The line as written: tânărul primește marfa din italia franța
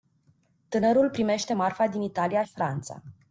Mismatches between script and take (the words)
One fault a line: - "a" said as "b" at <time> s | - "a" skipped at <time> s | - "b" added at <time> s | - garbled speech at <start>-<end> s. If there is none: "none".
none